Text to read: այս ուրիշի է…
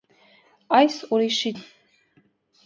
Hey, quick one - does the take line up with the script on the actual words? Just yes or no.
yes